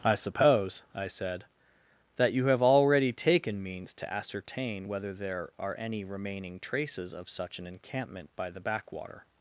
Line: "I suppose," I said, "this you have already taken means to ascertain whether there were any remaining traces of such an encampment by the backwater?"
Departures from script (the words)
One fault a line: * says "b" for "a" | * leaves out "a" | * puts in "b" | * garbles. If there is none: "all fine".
* says "that" for "this"
* says "are" for "were"